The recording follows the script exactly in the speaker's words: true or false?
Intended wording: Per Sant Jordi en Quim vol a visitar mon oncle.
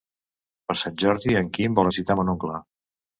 true